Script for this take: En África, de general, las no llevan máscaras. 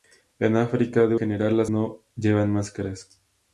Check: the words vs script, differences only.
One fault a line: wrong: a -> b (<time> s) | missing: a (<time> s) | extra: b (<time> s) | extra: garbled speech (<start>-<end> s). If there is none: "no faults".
no faults